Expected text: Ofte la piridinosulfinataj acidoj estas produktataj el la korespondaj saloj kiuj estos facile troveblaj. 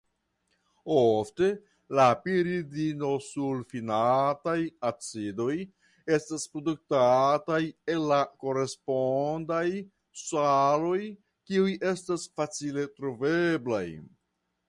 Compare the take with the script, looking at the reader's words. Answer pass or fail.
fail